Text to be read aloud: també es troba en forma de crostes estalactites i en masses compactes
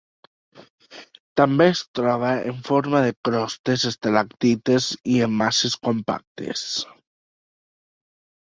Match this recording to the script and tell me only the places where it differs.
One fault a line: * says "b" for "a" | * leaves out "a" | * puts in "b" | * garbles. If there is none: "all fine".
all fine